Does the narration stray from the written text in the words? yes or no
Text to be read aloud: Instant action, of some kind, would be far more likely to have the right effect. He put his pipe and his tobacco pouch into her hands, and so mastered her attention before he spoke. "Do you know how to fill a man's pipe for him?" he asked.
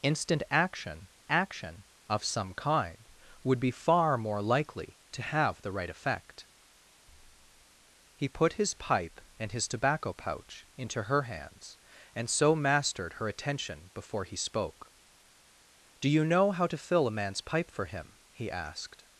yes